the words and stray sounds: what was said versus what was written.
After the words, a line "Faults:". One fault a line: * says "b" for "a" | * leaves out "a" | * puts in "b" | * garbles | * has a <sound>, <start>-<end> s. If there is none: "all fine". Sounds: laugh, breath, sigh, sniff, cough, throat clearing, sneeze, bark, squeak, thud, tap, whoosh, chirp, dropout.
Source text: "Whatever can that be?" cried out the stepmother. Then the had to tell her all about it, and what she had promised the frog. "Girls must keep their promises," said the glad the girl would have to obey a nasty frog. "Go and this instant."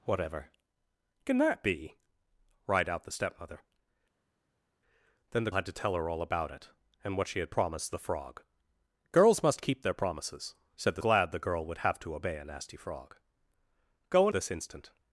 "Whatever can that be?" cried out the stepmother. Then the had to tell her all about it, and what she had promised the frog. "Girls must keep their promises," said the glad the girl would have to obey a nasty frog. "Go and this instant."
Faults:
all fine